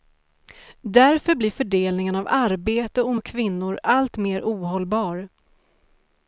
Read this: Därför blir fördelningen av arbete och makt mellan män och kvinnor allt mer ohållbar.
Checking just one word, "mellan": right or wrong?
wrong